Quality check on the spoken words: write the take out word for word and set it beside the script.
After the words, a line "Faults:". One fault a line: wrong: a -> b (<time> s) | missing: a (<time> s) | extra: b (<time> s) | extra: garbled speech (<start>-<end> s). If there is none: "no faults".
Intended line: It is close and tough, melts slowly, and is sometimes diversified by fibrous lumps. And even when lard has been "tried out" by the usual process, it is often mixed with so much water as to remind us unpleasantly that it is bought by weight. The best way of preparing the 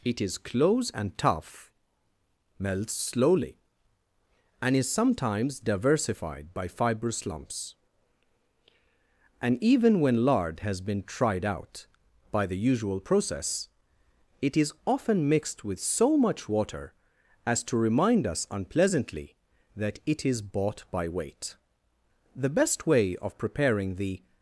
It is close and tough, melts slowly, and is sometimes diversified by fibrous lumps. And even when lard has been "tried out" by the usual process, it is often mixed with so much water as to remind us unpleasantly that it is bought by weight. The best way of preparing the
Faults:
no faults